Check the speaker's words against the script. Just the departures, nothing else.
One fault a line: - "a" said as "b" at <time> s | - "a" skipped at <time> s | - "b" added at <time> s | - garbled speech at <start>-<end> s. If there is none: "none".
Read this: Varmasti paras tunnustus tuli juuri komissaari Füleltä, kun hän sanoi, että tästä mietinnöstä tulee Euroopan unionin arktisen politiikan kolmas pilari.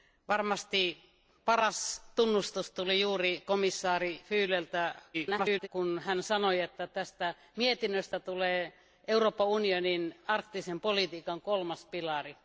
- garbled speech at 5.1-5.7 s